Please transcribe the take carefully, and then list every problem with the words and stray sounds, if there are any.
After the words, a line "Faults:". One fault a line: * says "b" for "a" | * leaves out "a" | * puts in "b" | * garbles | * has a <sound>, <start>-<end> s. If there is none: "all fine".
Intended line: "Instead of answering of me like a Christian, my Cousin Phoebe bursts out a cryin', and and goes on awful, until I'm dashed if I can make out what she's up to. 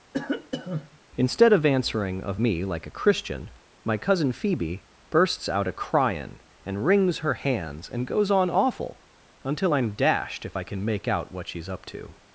"Instead of answering of me like a Christian, my Cousin Phoebe bursts out a cryin', and wrings her hands, and goes on awful, until I'm dashed if I can make out what she's up to.
Faults:
* has a cough, 0.1-1.0 s
* puts in "wrings her hands"